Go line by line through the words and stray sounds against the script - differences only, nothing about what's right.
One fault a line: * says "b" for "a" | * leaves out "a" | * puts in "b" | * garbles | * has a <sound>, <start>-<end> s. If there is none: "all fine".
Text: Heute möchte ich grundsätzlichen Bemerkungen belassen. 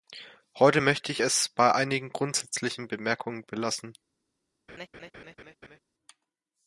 * puts in "es bei einigen"
* has a laugh, 4.7-5.8 s